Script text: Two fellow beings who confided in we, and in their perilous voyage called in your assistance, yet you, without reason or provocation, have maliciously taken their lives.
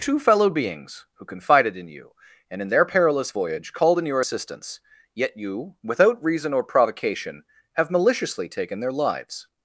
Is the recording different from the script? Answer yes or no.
yes